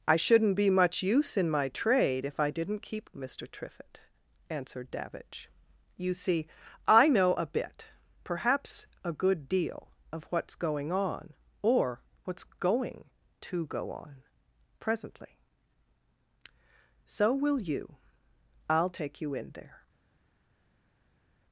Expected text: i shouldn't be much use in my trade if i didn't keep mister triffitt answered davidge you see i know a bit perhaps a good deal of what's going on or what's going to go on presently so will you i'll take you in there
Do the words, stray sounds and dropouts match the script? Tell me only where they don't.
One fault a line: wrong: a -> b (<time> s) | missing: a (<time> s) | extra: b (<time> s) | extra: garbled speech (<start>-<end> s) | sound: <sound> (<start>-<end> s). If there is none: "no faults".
no faults